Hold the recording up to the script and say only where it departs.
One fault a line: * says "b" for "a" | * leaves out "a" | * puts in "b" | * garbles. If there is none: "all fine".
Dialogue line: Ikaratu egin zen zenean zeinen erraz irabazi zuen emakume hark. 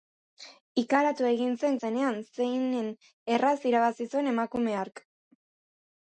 all fine